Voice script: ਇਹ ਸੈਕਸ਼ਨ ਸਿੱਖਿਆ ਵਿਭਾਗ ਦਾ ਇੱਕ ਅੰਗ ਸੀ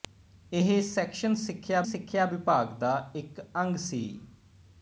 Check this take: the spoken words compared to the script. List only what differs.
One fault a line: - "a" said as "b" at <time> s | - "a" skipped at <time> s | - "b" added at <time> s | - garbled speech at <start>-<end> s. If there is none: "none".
- "ਸਿੱਖਿਆ" added at 1.8 s